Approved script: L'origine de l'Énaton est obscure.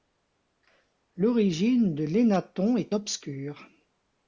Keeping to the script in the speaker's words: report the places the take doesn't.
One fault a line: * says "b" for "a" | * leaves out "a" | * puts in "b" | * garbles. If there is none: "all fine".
all fine